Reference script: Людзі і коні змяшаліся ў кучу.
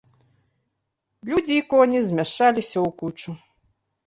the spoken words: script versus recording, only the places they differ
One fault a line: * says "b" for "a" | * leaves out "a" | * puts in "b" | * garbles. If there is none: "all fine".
all fine